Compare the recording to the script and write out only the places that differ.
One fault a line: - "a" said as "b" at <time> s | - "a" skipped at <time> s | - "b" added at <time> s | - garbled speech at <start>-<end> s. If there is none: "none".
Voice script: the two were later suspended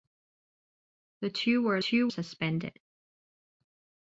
- "later" said as "two" at 1.7 s